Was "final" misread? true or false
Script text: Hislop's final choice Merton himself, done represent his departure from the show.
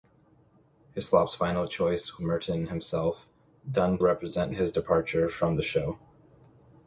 false